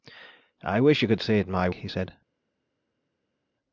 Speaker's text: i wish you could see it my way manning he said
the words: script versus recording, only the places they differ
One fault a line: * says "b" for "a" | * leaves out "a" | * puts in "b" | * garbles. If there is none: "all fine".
* leaves out "way manning"